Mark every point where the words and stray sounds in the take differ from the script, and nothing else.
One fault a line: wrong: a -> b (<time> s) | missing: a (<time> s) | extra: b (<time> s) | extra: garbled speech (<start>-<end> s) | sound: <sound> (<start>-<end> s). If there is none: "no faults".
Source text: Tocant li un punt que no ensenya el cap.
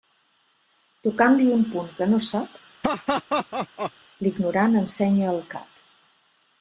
extra: sap l'ignorant (2.3 s)
sound: laugh (2.8-3.9 s)